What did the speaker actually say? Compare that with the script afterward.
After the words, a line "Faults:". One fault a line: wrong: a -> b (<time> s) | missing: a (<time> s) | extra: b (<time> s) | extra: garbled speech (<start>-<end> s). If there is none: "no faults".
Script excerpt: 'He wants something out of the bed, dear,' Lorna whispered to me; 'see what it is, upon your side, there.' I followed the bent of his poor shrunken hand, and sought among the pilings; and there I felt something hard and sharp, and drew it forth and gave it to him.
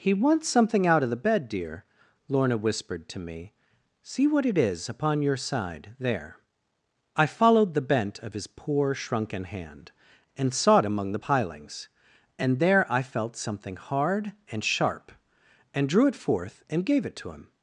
'He wants something out of the bed, dear,' Lorna whispered to me; 'see what it is, upon your side, there.' I followed the bent of his poor shrunken hand, and sought among the pilings; and there I felt something hard and sharp, and drew it forth and gave it to him.
Faults:
no faults